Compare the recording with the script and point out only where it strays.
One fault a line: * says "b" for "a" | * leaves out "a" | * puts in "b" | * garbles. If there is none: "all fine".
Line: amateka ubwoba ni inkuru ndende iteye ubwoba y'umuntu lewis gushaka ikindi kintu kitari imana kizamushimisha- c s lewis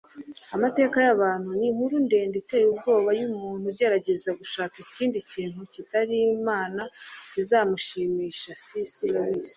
* says "y'abantu" for "ubwoba"
* says "ugerageza" for "lewis"